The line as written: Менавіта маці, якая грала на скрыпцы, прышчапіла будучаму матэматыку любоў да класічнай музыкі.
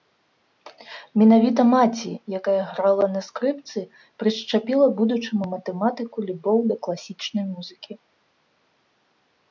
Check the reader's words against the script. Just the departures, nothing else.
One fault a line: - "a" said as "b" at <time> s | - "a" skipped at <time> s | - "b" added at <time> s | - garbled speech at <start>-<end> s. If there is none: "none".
none